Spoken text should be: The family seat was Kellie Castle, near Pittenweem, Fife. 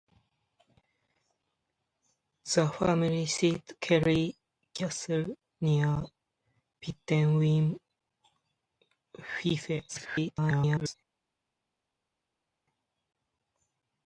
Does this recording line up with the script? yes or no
no